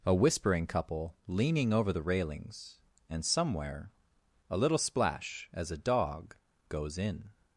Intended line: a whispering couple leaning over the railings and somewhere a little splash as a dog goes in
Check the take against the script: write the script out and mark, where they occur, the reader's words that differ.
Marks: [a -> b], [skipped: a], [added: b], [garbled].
a whispering couple leaning over the railings and somewhere a little splash as a dog goes in